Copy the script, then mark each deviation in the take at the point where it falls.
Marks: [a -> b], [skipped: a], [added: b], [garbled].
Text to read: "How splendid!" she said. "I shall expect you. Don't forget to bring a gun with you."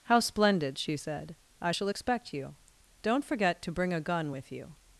"How splendid!" she said. "I shall expect you. Don't forget to bring a gun with you."